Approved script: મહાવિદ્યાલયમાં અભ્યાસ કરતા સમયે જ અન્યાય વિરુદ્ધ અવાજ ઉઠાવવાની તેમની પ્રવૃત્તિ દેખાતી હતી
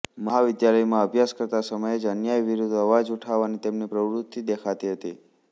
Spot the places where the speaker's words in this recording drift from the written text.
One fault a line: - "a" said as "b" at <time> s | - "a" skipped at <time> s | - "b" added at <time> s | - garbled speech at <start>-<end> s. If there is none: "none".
none